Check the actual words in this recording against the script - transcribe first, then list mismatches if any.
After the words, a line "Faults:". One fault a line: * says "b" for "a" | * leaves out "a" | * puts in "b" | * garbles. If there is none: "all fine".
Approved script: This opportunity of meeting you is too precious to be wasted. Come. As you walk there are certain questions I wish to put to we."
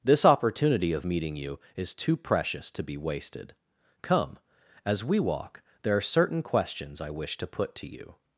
This opportunity of meeting you is too precious to be wasted. Come. As we walk there are certain questions I wish to put to you."
Faults:
* says "we" for "you"
* says "you" for "we"